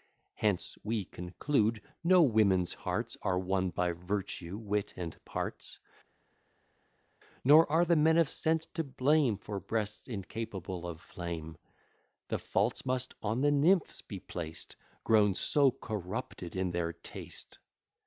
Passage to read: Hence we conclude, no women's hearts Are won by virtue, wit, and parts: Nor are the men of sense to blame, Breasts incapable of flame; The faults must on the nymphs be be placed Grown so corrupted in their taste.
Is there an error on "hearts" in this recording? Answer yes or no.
no